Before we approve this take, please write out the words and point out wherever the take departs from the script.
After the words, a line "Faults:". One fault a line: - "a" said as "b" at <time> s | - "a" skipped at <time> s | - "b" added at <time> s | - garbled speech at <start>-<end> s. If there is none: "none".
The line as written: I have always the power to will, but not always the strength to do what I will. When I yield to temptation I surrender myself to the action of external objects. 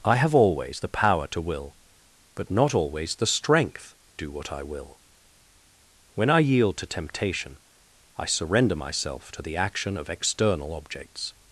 I have always the power to will, but not always the strength do what I will. When I yield to temptation I surrender myself to the action of external objects.
Faults:
- "to" skipped at 3.9 s